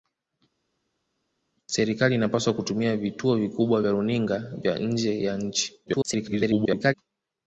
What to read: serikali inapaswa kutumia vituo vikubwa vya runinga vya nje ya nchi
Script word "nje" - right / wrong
right